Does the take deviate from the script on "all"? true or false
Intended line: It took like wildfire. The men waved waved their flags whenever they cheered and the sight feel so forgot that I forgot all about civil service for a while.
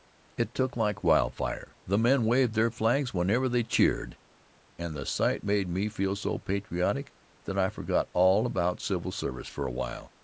false